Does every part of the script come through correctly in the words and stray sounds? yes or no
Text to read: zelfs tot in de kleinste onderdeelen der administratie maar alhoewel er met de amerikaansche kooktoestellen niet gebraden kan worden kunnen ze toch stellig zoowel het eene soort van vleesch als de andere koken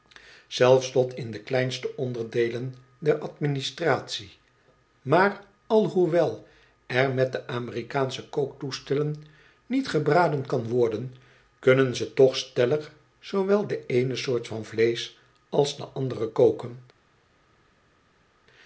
no